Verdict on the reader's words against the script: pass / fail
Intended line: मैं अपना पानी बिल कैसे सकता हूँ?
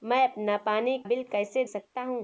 pass